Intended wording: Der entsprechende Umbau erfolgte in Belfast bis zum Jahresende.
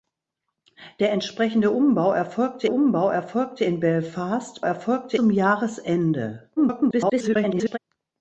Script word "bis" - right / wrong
wrong